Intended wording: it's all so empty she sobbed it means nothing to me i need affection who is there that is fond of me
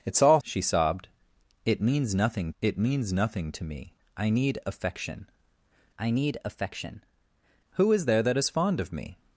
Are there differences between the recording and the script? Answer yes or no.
yes